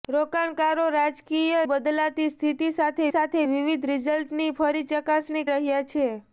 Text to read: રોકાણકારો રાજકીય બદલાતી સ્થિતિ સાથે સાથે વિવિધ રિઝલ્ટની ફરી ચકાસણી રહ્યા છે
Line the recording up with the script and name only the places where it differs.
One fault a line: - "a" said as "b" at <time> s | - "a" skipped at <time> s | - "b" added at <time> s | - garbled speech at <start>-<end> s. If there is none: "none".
none